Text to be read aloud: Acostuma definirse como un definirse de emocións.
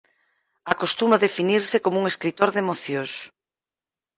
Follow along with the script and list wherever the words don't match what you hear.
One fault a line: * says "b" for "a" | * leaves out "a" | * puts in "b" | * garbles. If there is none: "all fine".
* says "escritor" for "definirse"